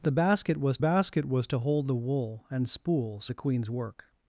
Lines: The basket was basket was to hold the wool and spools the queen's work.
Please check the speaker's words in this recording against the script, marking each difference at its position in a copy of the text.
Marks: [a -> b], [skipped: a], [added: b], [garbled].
The basket was basket was to hold the wool and spools the queen's work.